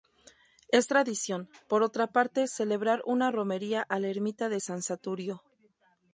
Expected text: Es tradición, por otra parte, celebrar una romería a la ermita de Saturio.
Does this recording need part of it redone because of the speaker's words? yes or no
yes